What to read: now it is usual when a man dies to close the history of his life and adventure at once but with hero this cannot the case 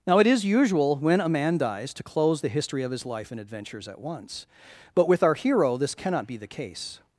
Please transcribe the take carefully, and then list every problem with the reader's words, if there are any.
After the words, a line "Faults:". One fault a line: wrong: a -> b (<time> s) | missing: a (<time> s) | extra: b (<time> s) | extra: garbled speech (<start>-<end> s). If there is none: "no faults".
now it is usual when a man dies to close the history of his life and adventures at once but with our hero this cannot be the case
Faults:
wrong: adventure -> adventures (3.4 s)
extra: our (5.2 s)
extra: be (6.3 s)